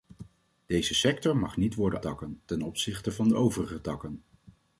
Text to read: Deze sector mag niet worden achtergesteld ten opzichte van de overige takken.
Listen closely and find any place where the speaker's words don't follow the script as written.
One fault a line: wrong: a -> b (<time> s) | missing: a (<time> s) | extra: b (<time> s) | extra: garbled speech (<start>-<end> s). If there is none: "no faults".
wrong: achtergesteld -> takken (2.0 s)